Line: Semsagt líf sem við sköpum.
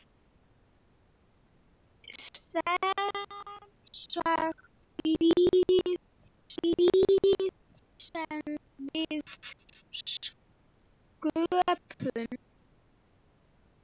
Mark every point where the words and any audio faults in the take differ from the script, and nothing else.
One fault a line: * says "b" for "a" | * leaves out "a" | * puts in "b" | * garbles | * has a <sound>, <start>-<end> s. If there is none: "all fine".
* puts in "líf"